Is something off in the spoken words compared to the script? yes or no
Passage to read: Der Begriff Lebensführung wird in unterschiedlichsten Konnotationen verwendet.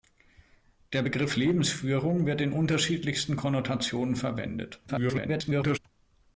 yes